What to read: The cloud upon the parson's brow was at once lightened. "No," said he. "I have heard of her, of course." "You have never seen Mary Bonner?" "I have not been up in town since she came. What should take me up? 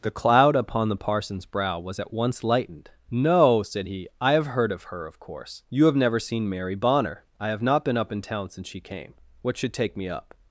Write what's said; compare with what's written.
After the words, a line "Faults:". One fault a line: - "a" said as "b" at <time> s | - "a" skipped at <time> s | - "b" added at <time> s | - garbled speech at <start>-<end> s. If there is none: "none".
The cloud upon the parson's brow was at once lightened. "No," said he. "I have heard of her, of course." "You have never seen Mary Bonner?" "I have not been up in town since she came. What should take me up?
Faults:
none